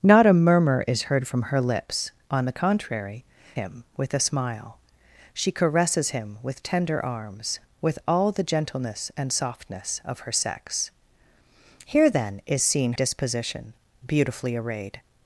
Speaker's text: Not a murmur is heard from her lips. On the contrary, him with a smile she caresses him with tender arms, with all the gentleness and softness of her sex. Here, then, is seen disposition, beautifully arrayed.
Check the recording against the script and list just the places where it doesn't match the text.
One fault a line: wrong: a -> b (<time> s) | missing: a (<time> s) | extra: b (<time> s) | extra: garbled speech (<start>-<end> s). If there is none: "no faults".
no faults